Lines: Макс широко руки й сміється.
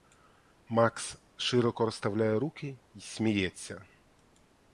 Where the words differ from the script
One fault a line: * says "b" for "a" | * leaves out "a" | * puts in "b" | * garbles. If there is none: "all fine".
* puts in "розставляє"